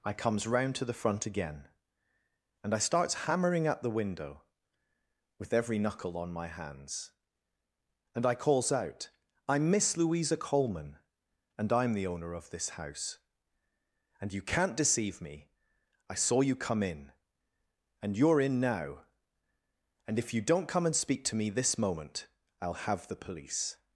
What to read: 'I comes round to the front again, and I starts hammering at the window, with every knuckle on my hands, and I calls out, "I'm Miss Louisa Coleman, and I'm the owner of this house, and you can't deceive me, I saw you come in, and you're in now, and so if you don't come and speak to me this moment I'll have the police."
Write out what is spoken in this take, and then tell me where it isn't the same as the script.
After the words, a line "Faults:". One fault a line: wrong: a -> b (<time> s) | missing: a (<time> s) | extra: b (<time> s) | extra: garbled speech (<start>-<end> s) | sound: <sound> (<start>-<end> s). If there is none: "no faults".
'I comes round to the front again, and I starts hammering at the window, with every knuckle on my hands, and I calls out, "I'm Miss Louisa Coleman, and I'm the owner of this house, and you can't deceive me, I saw you come in, and you're in now, and if you don't come and speak to me this moment I'll have the police."
Faults:
missing: so (20.2 s)